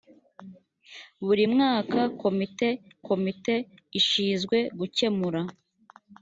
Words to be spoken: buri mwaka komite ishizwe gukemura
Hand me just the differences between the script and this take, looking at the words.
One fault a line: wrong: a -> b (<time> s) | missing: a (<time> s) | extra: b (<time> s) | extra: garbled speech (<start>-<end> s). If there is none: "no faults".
extra: komite (3.1 s)